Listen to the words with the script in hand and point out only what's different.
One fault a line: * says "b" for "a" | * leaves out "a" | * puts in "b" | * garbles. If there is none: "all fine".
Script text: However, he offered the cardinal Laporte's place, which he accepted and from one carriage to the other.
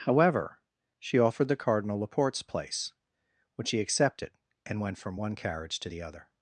* says "she" for "he"
* puts in "went"